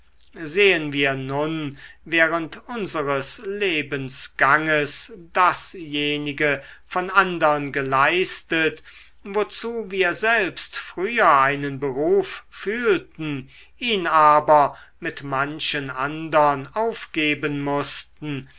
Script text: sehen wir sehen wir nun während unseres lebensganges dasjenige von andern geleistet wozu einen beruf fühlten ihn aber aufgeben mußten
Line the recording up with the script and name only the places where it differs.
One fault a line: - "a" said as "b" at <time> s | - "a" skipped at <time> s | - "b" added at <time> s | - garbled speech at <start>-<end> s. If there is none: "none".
- "sehen wir" skipped at 1.1 s
- "wir selbst früher" added at 9.9 s
- "mit manchen andern" added at 15.0 s